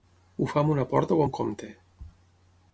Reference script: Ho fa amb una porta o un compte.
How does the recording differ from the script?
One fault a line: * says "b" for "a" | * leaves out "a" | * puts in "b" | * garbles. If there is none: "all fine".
all fine